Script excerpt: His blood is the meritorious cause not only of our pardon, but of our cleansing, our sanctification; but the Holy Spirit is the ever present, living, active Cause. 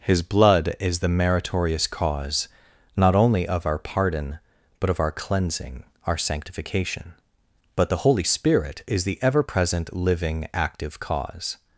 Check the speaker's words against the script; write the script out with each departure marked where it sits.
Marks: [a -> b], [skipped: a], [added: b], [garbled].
His blood is the meritorious cause not only of our pardon, but of our cleansing, our sanctification; but the Holy Spirit is the ever present, living, active Cause.